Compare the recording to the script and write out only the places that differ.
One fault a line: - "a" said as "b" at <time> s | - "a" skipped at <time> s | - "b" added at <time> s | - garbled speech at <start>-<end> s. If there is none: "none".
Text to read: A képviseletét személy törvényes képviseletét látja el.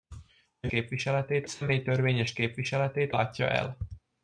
none